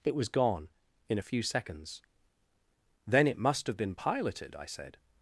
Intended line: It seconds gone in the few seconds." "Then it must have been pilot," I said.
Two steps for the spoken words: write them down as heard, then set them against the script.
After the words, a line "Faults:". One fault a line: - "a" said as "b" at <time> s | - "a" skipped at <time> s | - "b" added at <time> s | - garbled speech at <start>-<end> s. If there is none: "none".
It was gone in a few seconds." "Then it must have been piloted," I said.
Faults:
- "seconds" said as "was" at 0.1 s
- "the" said as "a" at 1.2 s
- "pilot" said as "piloted" at 3.9 s